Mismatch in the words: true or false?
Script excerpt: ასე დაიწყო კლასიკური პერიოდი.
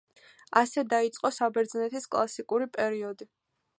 true